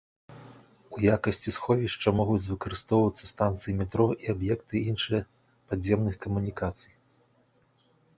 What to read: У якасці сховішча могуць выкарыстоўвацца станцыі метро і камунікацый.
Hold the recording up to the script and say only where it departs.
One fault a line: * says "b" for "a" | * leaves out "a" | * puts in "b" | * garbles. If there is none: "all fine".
* puts in "аб'екты іншыя падземных"